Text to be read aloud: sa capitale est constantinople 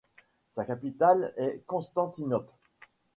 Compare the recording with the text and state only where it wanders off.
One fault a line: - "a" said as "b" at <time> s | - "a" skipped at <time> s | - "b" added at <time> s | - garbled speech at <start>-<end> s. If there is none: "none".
none